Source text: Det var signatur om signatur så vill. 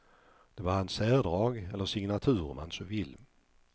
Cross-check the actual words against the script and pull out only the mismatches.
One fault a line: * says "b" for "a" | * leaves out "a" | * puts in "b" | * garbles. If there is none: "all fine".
* puts in "hans särdrag eller"
* says "man" for "signatur"